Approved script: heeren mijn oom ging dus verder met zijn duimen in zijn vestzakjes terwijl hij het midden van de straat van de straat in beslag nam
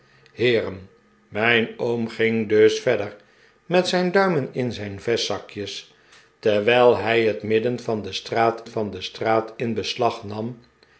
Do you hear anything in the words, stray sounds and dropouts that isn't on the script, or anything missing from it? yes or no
no